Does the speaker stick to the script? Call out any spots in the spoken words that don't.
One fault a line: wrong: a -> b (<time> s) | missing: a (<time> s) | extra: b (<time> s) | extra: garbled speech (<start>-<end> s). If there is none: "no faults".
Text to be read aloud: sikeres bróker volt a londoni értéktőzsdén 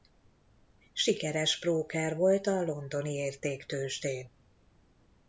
no faults